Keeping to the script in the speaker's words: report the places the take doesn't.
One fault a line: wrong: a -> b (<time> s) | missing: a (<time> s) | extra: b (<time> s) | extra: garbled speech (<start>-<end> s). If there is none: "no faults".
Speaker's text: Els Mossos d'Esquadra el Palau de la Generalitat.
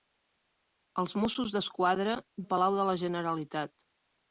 no faults